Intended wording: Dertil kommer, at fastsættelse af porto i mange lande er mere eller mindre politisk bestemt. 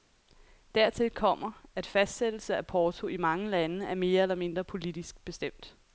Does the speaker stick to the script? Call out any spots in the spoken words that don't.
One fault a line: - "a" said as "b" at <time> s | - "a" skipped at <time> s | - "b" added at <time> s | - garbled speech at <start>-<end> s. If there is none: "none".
none